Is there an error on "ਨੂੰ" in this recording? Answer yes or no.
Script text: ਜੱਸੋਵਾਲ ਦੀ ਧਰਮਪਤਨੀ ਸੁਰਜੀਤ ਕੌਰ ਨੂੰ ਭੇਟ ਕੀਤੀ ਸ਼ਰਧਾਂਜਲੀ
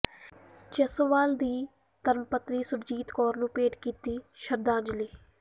no